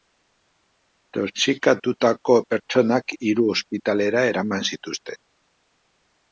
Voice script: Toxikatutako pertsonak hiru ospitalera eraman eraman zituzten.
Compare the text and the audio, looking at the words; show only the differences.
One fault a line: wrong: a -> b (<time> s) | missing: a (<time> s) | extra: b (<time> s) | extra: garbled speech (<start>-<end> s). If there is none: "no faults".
missing: eraman (4.7 s)